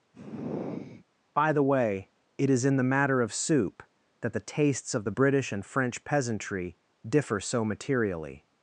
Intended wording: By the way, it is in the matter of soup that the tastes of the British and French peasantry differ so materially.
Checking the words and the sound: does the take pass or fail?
fail